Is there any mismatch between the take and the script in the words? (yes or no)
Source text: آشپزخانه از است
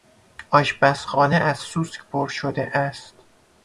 yes